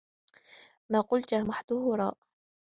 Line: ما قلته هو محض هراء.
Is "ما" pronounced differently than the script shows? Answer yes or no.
no